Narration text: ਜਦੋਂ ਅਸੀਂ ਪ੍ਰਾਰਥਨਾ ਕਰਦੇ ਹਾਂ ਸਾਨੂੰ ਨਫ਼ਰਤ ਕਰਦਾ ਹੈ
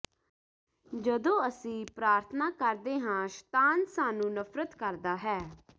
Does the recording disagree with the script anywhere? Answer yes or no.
yes